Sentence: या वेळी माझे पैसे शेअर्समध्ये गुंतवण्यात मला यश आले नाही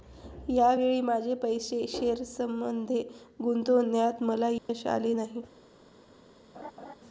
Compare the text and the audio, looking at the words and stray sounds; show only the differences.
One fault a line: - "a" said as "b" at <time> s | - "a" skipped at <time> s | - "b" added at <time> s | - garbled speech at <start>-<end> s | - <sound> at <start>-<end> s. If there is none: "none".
- dropout at 4.6-4.7 s
- laugh at 6.5-6.9 s